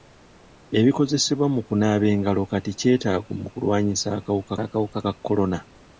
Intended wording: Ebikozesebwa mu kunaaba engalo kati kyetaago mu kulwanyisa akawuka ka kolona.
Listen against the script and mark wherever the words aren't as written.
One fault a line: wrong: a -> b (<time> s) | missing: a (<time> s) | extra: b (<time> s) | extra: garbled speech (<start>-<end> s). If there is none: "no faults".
extra: akawuka (4.6 s)